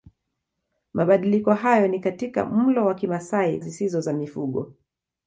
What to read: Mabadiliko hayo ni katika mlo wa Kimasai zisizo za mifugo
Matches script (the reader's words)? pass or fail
pass